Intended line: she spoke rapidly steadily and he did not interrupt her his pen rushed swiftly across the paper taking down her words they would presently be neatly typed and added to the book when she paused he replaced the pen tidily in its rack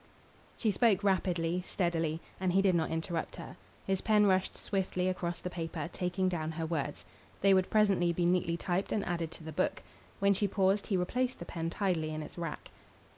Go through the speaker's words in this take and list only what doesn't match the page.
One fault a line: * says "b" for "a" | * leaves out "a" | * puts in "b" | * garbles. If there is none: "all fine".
all fine